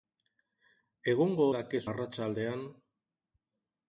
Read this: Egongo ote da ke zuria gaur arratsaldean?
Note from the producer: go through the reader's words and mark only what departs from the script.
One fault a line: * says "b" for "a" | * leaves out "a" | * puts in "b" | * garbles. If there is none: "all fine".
* leaves out "ote"
* leaves out "zuria gaur"